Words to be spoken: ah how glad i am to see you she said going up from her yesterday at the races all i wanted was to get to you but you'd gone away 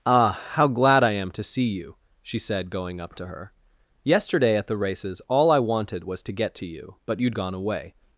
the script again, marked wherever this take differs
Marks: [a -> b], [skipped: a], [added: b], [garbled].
ah how glad i am to see you she said going up [from -> to] her yesterday at the races all i wanted was to get to you but you'd gone away